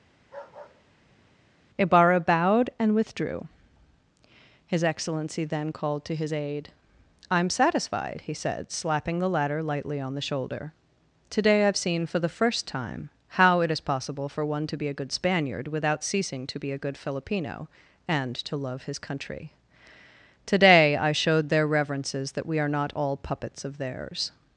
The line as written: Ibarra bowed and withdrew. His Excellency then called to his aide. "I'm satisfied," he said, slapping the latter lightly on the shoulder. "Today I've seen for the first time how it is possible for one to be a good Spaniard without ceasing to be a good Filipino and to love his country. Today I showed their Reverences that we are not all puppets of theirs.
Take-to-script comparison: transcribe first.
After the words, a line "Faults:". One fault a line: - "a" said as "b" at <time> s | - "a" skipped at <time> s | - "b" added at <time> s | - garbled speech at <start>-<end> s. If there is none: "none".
Ibarra bowed and withdrew. His Excellency then called to his aide. "I'm satisfied," he said, slapping the latter lightly on the shoulder. "Today I've seen for the first time how it is possible for one to be a good Spaniard without ceasing to be a good Filipino and to love his country. Today I showed their Reverences that we are not all puppets of theirs.
Faults:
none